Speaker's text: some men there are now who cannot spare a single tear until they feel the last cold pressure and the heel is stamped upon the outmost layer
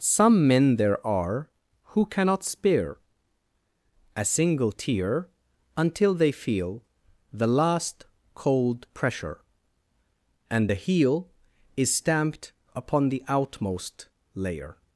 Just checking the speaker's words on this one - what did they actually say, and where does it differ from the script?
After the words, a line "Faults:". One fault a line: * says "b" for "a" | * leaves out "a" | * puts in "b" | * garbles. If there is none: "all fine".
some men there are who cannot spare a single tear until they feel the last cold pressure and the heel is stamped upon the outmost layer
Faults:
* leaves out "now"